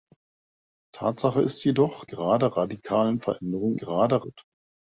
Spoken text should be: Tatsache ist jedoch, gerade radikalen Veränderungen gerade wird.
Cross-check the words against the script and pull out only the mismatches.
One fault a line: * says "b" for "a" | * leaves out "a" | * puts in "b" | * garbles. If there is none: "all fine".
all fine